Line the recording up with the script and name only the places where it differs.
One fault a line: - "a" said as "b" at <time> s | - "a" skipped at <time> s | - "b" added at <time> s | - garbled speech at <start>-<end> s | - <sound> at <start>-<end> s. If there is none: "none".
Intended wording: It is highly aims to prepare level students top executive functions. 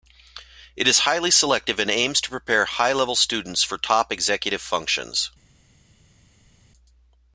- "selective and" added at 1.3 s
- "high" added at 2.6 s
- "for" added at 3.6 s